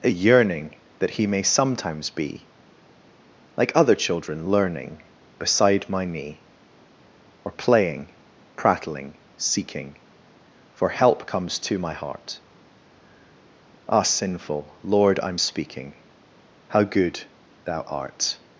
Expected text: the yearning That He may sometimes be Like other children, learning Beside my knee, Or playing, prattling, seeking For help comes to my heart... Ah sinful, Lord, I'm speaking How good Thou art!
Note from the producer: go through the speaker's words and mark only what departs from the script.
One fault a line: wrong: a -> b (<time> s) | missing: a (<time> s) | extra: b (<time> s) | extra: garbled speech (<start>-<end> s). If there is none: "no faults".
wrong: the -> a (0.0 s)